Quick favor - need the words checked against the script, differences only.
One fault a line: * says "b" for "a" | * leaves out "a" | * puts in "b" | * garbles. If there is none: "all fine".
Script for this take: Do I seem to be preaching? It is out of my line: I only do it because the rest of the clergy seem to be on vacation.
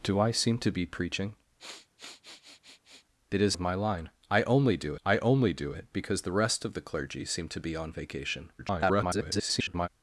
* leaves out "out"
* puts in "I only do"
* garbles